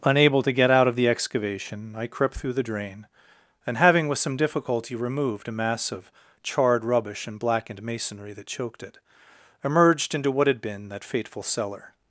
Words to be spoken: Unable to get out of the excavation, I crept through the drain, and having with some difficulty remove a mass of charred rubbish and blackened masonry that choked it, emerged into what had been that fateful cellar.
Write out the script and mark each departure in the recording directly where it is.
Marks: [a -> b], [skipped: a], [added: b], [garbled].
Unable to get out of the excavation, I crept through the drain, and having with some difficulty [remove -> removed] a mass of charred rubbish and blackened masonry that choked it, emerged into what had been that fateful cellar.